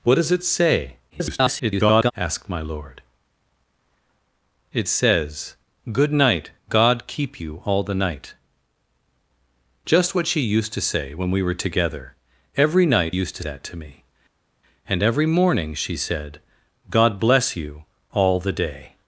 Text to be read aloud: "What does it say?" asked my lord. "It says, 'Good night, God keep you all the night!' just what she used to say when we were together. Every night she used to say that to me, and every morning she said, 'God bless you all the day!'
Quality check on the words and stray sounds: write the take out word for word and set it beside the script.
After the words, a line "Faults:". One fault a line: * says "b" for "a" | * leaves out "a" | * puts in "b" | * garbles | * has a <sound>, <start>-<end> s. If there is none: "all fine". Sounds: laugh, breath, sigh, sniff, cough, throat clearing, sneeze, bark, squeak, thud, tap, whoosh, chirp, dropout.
"What does it say?" [garbled] asked my lord. "It says, 'Good night, God keep you all the night!' just what she used to say when we were together. Every night used to that to me, and every morning she said, 'God bless you all the day!'
Faults:
* garbles
* leaves out "she"
* leaves out "say"